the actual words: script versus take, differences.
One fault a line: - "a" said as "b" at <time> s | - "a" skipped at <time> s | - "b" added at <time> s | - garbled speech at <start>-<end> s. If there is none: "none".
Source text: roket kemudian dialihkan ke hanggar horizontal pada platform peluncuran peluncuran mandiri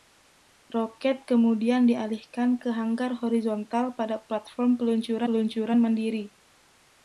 none